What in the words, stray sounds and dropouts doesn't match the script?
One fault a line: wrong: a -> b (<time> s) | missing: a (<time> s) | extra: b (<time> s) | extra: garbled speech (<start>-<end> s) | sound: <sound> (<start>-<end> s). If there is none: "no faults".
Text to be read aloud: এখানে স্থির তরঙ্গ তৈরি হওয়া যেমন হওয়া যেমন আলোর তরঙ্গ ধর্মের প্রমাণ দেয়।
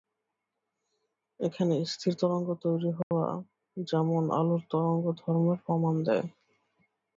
sound: dropout (3.0-3.1 s)
missing: হওয়া যেমন (4.2 s)